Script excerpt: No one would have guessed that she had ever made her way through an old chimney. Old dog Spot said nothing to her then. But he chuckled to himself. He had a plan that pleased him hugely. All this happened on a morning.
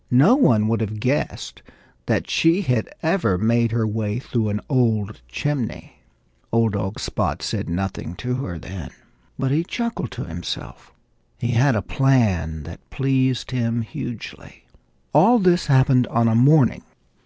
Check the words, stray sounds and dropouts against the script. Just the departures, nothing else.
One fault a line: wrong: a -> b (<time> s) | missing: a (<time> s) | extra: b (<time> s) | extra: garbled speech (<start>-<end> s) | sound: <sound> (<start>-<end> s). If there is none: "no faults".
no faults